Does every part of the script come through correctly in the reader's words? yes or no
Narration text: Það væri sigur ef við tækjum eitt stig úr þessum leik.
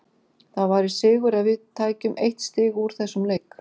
yes